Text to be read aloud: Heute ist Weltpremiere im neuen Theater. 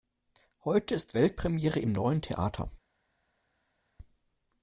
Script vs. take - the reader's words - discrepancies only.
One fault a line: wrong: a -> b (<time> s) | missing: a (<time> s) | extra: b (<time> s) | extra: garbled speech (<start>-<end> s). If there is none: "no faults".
no faults